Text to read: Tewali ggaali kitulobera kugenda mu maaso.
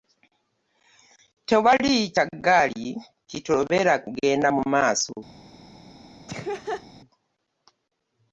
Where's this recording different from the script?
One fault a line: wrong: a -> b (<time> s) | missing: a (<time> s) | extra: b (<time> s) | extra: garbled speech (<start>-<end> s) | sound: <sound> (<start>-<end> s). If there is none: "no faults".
extra: kya (2.1 s)
sound: laugh (6.3-6.9 s)